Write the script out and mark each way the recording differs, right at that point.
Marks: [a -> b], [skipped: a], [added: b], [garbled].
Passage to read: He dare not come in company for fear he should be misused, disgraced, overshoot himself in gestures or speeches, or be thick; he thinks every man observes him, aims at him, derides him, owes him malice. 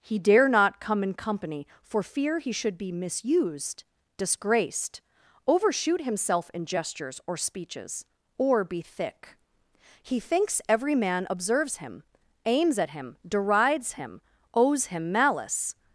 He dare not come in company for fear he should be misused, disgraced, overshoot himself in gestures or speeches, or be thick; he thinks every man observes him, aims at him, derides him, owes him malice.